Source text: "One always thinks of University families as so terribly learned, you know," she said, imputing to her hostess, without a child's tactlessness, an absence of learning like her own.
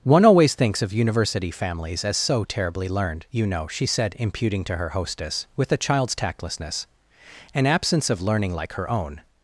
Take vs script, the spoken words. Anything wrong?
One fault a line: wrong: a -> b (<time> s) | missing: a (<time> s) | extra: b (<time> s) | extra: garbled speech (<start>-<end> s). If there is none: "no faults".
wrong: without -> with (5.6 s)